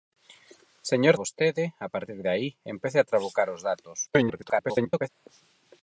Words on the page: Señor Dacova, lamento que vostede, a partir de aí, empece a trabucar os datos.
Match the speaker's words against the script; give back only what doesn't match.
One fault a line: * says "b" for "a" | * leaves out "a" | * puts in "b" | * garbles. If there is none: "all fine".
* leaves out "Dacova lamento que"
* garbles